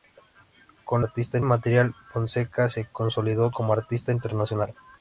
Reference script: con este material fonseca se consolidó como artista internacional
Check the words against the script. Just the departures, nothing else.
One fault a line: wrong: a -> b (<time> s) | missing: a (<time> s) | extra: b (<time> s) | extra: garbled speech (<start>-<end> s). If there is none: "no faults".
wrong: este -> artista (1.0 s)